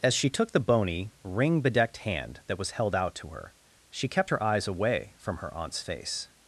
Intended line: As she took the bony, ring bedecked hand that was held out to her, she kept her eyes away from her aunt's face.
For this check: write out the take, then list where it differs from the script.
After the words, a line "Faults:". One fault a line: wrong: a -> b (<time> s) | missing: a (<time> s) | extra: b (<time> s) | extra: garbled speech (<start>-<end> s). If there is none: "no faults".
As she took the bony, ring bedecked hand that was held out to her, she kept her eyes away from her aunt's face.
Faults:
no faults